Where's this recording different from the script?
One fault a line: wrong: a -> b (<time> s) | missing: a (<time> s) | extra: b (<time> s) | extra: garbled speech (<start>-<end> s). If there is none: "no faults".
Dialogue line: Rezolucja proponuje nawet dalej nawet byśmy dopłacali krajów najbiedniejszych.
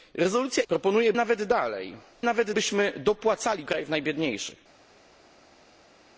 no faults